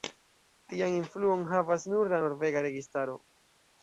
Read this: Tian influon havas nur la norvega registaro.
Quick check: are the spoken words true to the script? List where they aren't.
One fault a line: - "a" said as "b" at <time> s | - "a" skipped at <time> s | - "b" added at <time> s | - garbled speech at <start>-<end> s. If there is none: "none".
none